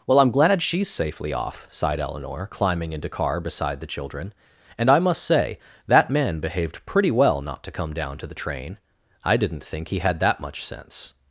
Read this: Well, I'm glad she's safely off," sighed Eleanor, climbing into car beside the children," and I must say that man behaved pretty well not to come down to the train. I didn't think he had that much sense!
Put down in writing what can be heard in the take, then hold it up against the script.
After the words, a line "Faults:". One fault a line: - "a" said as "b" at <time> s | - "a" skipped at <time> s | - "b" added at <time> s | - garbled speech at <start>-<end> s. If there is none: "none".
Well, I'm glad she's safely off," sighed Eleanor, climbing into car beside the children," and I must say that man behaved pretty well not to come down to the train. I didn't think he had that much sense!
Faults:
none